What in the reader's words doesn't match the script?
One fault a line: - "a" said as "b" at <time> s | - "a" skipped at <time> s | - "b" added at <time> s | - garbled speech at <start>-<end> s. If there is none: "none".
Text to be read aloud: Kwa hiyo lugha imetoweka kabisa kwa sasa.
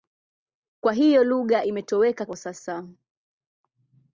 - "kabisa" skipped at 2.2 s